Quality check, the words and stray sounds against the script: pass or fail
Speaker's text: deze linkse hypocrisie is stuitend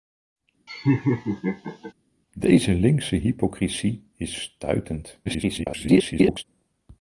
fail